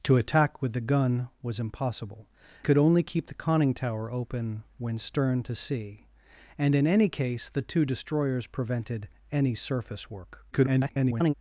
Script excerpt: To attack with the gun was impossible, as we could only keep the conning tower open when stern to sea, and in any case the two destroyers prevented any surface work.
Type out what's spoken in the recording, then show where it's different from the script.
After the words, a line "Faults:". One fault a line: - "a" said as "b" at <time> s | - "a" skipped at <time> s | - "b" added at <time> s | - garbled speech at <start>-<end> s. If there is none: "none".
To attack with the gun was impossible, could only keep the conning tower open when stern to sea, and in any case the two destroyers prevented any surface work. [garbled]
Faults:
- "as we" skipped at 2.3 s
- garbled speech at 10.5-11.3 s